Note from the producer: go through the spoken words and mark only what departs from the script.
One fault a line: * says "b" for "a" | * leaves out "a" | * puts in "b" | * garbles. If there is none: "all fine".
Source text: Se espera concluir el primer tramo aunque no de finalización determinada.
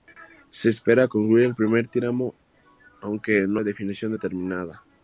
all fine